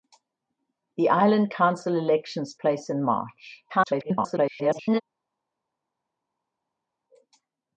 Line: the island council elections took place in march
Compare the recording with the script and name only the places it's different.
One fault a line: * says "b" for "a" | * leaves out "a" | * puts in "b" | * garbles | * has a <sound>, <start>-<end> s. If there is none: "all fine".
* leaves out "took"
* garbles